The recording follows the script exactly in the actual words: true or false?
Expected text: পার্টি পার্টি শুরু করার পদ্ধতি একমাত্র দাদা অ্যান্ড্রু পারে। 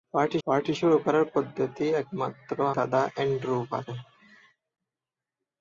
true